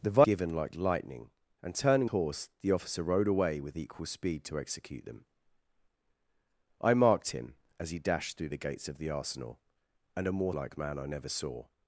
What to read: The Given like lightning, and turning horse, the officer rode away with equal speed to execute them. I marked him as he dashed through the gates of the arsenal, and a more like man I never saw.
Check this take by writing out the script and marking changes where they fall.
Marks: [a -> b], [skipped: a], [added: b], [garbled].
The Given like lightning, and turning horse, the officer rode away with equal speed to execute them. I marked him as he dashed through the gates of the arsenal, and a more like man I never saw.